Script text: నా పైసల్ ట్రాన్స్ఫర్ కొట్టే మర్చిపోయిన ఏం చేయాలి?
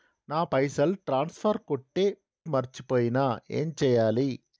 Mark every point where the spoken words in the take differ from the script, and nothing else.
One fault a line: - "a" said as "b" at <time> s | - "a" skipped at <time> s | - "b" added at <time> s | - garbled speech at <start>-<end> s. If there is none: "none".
none